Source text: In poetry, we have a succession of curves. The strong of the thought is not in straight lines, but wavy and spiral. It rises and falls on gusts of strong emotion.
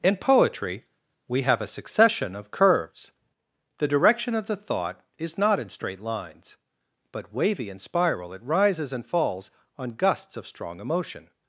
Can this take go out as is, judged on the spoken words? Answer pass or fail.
fail